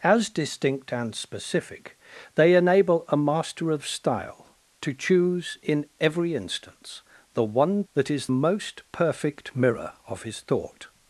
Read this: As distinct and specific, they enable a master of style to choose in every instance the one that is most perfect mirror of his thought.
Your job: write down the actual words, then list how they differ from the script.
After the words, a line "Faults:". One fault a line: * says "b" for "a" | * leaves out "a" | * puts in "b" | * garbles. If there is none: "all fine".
As distinct and specific, they enable a master of style to choose in every instance the one that is most perfect mirror of his thought.
Faults:
all fine